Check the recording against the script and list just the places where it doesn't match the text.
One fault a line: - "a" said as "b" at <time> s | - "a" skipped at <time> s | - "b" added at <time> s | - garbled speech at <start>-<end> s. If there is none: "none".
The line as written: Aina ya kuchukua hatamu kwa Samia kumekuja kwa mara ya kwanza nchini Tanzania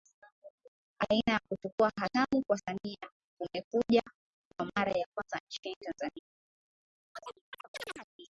none